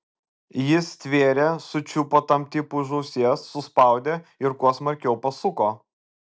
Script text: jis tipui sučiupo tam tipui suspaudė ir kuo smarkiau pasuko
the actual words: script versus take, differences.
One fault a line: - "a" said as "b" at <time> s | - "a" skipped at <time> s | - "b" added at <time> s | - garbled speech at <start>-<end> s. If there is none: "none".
- "tipui" said as "stvėrė" at 0.9 s
- "už ausies" added at 2.9 s